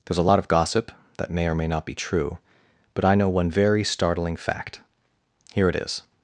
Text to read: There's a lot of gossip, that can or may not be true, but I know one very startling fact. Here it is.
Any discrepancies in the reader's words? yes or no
yes